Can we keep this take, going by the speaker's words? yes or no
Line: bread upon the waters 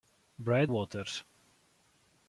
no